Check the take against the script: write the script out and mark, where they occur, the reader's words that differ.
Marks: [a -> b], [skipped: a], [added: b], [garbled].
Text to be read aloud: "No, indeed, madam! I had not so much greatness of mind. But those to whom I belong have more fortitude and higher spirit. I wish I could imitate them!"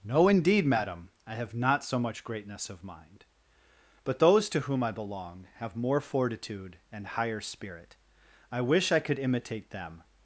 "No, indeed, madam! I [had -> have] not so much greatness of mind. But those to whom I belong have more fortitude and higher spirit. I wish I could imitate them!"